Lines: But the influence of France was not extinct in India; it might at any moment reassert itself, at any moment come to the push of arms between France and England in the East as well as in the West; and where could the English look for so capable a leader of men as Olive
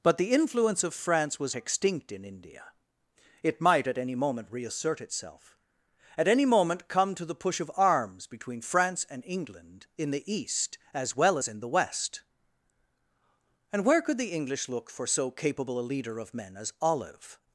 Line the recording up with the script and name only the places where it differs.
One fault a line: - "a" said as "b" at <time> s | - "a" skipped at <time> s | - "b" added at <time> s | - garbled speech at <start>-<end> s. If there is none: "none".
- "not" skipped at 1.6 s